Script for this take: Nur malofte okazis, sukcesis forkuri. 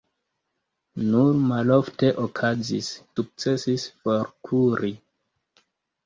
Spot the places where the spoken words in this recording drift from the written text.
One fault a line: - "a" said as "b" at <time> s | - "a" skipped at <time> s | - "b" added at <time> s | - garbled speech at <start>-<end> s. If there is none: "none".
none